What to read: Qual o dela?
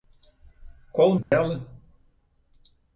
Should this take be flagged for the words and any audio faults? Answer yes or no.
yes